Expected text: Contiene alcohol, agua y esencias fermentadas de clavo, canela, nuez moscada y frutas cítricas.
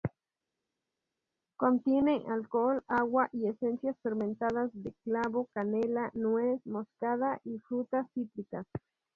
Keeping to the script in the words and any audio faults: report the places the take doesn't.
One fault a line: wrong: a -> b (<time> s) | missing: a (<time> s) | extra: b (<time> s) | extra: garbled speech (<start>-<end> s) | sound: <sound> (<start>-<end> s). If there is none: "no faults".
no faults